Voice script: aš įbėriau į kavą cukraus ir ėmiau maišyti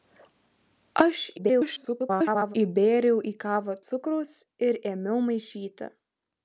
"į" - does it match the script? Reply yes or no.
yes